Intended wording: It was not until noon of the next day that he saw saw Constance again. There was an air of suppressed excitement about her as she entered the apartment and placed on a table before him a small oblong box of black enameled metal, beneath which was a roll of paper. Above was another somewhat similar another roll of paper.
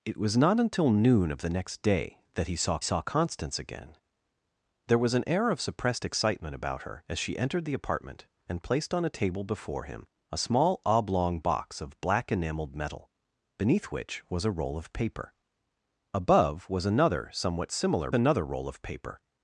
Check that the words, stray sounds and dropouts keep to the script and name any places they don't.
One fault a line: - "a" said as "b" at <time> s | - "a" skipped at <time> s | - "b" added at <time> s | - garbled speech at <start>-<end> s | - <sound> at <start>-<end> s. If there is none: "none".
none